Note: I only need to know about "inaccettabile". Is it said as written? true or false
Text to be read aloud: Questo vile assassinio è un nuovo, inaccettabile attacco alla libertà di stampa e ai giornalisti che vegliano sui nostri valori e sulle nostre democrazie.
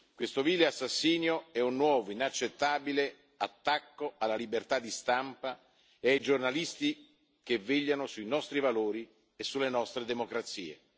true